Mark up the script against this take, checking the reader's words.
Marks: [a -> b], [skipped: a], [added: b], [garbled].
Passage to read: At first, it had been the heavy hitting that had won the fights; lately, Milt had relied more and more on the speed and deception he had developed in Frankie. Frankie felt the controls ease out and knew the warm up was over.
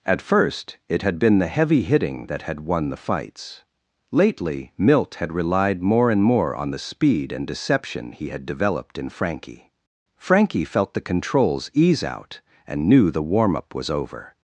At first, it had been the heavy hitting that had won the fights; lately, Milt had relied more and more on the speed and deception he had developed in Frankie. Frankie felt the controls ease out and knew the warm up was over.